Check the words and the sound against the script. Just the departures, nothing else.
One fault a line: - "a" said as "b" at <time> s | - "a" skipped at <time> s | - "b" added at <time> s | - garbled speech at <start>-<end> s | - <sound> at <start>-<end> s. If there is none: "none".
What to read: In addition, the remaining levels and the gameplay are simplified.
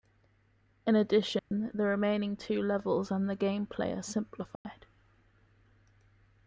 - dropout at 1.4-1.5 s
- "two" added at 2.4 s
- dropout at 4.6-4.7 s